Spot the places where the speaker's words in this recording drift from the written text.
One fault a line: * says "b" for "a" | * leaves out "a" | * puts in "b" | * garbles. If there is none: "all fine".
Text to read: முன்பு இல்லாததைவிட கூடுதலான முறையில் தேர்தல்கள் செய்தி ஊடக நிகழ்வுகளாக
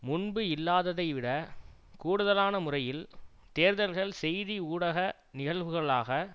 all fine